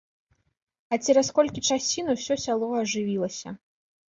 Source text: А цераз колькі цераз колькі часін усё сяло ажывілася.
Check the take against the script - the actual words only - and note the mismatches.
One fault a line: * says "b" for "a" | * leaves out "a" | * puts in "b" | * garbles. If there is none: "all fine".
* leaves out "цераз колькі"